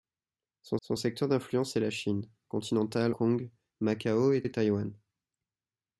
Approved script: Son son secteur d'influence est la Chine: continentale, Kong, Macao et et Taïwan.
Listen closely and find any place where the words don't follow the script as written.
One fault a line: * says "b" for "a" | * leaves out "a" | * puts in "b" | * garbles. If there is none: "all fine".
all fine